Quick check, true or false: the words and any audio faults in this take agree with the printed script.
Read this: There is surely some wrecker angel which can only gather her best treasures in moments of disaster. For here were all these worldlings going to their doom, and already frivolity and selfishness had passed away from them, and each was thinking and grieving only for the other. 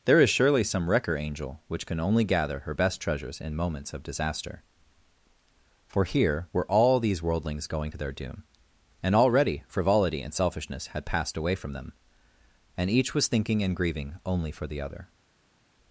true